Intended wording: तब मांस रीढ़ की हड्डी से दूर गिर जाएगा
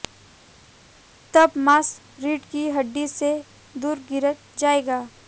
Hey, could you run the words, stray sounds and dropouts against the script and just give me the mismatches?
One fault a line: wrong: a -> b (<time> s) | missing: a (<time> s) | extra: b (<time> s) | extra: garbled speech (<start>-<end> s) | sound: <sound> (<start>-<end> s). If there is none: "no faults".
no faults